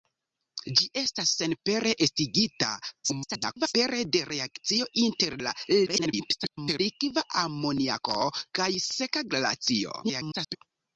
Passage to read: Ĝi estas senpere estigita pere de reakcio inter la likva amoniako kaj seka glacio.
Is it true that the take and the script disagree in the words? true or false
true